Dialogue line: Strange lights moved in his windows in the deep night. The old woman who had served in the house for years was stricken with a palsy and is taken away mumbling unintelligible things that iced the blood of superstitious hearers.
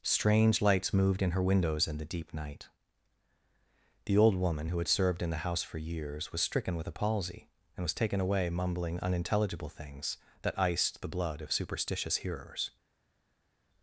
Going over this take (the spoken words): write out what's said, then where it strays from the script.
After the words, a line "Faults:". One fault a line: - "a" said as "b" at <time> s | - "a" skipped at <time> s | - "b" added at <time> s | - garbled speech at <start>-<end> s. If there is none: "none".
Strange lights moved in her windows in the deep night. The old woman who had served in the house for years was stricken with a palsy and was taken away mumbling unintelligible things that iced the blood of superstitious hearers.
Faults:
- "his" said as "her" at 1.3 s
- "is" said as "was" at 7.8 s